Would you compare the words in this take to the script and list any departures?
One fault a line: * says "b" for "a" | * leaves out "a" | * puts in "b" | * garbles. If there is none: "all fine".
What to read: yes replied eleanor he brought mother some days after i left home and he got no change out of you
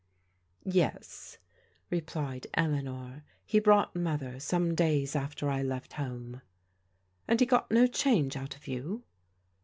all fine